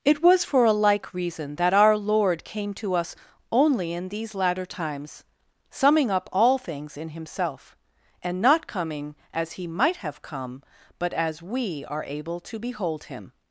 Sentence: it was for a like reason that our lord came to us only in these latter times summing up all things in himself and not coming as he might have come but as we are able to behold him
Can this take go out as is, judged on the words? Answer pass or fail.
pass